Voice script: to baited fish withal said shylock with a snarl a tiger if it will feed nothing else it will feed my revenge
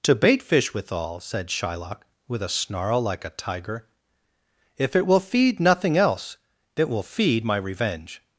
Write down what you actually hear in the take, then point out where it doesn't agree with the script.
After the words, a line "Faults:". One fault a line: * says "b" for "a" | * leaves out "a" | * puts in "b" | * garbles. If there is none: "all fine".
to bait fish withal said shylock with a snarl like a tiger if it will feed nothing else it will feed my revenge
Faults:
* says "bait" for "baited"
* puts in "like"